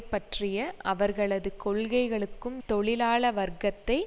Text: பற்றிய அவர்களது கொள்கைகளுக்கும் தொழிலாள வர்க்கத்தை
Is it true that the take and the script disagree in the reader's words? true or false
false